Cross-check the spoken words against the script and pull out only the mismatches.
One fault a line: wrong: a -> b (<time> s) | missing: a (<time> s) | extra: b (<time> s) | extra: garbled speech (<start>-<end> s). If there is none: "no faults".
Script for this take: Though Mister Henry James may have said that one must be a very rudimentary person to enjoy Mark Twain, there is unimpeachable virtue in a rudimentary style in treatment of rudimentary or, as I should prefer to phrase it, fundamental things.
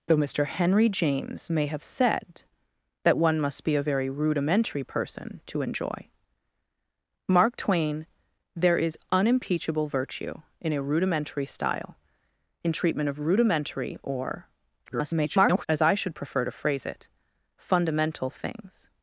extra: garbled speech (14.9-15.7 s)